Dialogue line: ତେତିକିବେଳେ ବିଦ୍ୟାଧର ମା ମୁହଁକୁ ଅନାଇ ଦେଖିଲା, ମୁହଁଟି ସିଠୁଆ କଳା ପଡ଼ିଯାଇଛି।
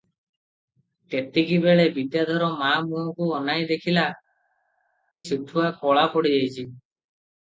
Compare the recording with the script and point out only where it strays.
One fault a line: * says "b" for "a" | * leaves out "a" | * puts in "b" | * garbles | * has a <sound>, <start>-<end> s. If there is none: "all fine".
* leaves out "ମୁହଁଟି"